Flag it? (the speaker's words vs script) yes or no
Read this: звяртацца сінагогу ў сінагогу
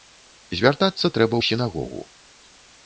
yes